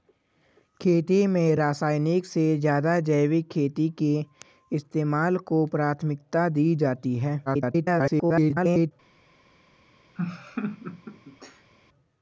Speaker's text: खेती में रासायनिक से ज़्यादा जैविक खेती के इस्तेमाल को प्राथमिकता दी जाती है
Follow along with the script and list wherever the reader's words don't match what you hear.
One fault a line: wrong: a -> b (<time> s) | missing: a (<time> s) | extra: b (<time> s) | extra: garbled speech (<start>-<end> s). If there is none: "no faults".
extra: garbled speech (7.5-8.9 s)